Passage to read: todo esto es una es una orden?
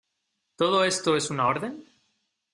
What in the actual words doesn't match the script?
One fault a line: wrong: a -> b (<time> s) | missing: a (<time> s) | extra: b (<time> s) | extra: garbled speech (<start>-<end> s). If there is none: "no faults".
missing: es una (1.5 s)